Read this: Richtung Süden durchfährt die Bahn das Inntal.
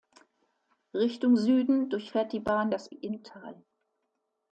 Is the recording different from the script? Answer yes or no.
no